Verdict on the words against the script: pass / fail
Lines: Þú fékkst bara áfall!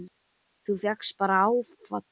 pass